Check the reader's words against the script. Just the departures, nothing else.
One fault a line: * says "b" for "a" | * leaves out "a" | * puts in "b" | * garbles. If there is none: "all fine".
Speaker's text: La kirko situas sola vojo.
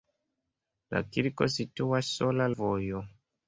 all fine